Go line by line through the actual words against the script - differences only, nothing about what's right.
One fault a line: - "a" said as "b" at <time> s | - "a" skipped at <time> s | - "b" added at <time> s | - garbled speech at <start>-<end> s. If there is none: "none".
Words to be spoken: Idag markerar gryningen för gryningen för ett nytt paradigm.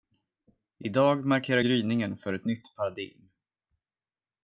- "gryningen för" skipped at 2.3 s